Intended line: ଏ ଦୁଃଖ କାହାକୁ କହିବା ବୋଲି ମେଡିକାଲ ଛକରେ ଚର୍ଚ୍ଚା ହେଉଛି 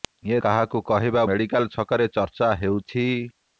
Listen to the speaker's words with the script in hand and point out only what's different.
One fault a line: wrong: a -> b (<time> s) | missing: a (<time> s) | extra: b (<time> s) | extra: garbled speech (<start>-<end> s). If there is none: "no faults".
missing: ଦୁଃଖ (0.4 s)
missing: ବୋଲି (1.3 s)